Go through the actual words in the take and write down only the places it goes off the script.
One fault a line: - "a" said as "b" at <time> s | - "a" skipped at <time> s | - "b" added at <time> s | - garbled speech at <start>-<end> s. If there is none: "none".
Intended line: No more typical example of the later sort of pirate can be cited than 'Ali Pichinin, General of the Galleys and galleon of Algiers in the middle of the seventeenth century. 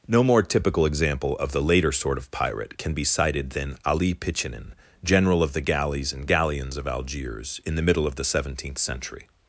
- "galleon" said as "galleons" at 6.3 s